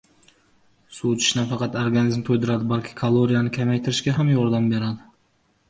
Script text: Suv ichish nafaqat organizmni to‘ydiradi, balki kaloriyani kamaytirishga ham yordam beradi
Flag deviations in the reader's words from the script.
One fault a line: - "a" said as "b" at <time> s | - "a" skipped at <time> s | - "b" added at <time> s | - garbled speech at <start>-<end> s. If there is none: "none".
none